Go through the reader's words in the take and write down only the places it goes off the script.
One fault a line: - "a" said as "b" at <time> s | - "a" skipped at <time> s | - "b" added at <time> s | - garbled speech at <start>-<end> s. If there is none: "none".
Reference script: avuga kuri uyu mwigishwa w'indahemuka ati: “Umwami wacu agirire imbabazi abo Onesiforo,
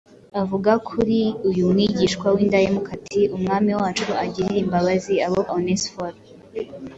none